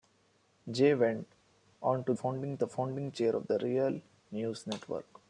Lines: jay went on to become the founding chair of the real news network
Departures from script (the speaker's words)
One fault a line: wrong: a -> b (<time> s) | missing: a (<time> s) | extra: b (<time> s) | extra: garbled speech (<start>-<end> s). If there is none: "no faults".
wrong: become -> founding (2.1 s)